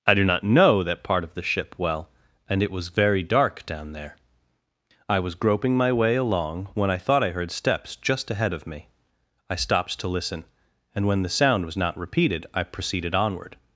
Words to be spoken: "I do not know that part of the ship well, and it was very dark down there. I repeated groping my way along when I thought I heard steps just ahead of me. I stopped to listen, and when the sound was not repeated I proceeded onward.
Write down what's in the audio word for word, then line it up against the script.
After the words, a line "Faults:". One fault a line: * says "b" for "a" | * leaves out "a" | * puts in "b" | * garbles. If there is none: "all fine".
"I do not know that part of the ship well, and it was very dark down there. I was groping my way along when I thought I heard steps just ahead of me. I stopped to listen, and when the sound was not repeated I proceeded onward.
Faults:
* says "was" for "repeated"